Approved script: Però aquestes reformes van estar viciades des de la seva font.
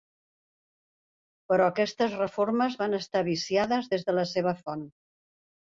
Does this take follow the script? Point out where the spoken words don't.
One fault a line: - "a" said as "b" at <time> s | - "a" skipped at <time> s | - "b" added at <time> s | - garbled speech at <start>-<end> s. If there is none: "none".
none